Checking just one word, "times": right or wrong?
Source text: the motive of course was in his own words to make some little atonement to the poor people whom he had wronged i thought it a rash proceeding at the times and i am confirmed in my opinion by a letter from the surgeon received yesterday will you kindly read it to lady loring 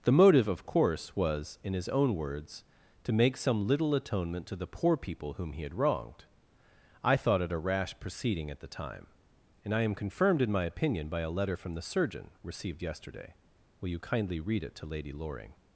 wrong